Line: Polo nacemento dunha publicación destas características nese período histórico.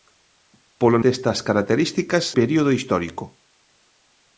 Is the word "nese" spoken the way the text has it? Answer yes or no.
no